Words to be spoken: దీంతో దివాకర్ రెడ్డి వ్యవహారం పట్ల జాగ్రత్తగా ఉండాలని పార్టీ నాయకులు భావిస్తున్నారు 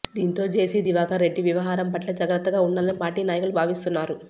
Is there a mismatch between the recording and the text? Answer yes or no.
yes